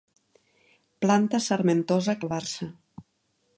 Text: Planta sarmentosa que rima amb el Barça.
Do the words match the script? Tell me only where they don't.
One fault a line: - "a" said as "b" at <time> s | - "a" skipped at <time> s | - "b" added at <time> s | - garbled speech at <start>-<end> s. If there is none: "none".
- "que rima amb" skipped at 2.2 s